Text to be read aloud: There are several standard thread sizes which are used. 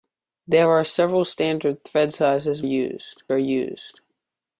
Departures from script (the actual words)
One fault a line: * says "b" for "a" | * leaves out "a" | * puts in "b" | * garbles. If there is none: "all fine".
* says "used" for "which"